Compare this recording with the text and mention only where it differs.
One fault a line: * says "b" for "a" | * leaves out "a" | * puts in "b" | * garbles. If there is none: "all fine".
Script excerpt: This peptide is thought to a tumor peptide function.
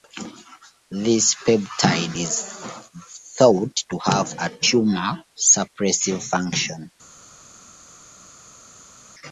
* puts in "have"
* says "suppressive" for "peptide"